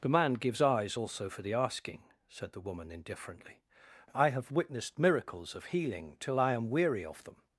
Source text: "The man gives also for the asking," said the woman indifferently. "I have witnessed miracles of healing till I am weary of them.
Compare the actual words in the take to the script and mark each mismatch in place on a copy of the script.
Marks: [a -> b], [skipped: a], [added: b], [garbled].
"The man gives [added: eyes] also for the asking," said the woman indifferently. "I have witnessed miracles of healing till I am weary of them.